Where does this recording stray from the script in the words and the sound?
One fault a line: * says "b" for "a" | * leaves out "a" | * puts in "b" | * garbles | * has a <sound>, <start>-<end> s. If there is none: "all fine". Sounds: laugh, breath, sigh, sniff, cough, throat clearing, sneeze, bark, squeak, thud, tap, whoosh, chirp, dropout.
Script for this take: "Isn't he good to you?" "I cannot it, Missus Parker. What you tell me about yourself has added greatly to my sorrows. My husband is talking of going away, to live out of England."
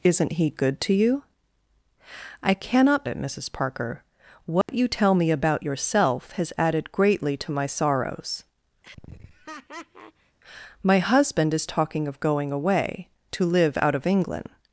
* has a dropout, 4.6-4.7 s
* has a laugh, 8.8-10.4 s